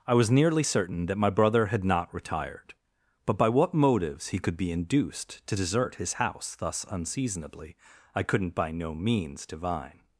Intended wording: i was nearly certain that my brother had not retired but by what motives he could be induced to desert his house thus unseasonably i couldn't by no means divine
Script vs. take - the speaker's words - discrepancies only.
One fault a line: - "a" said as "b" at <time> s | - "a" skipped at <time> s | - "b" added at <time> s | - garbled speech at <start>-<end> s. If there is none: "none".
none